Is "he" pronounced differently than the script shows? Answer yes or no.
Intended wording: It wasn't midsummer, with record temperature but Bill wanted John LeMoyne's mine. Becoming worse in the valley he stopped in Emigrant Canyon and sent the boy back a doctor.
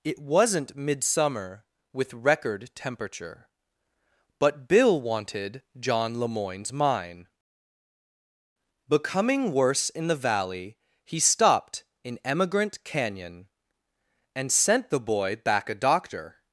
no